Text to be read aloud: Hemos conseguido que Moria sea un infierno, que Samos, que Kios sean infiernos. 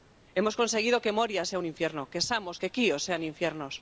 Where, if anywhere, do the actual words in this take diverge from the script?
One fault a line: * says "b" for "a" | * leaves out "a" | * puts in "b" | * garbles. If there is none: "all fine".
all fine